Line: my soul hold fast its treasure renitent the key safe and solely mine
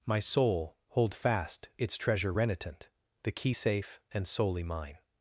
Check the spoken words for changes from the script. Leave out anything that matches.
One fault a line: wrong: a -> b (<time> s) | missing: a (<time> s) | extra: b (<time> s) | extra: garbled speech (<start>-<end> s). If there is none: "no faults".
no faults